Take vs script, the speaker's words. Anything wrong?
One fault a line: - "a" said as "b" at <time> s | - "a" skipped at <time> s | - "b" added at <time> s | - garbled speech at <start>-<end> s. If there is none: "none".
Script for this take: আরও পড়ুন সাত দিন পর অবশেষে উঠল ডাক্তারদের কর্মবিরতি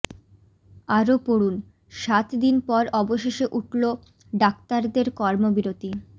none